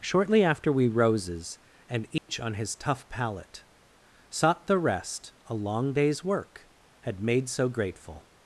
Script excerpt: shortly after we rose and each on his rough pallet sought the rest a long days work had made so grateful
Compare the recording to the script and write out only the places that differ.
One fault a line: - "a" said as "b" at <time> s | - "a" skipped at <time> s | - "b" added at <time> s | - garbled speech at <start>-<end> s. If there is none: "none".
- "rose" said as "roses" at 0.9 s
- "rough" said as "tough" at 2.8 s